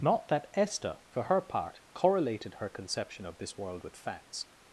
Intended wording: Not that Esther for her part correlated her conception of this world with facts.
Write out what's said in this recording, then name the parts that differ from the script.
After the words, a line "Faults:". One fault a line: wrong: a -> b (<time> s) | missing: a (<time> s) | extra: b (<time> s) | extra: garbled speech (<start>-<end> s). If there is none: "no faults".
Not that Esther for her part correlated her conception of this world with facts.
Faults:
no faults